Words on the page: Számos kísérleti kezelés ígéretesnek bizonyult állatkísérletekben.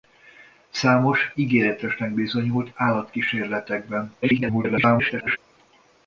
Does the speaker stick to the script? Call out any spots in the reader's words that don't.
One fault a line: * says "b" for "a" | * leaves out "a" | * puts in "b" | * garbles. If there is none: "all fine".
* leaves out "kísérleti kezelés"
* garbles